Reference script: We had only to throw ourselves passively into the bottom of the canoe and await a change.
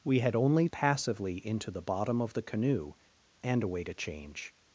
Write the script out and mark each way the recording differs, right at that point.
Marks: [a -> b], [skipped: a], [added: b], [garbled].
We had only [skipped: to throw ourselves] passively into the bottom of the canoe and await a change.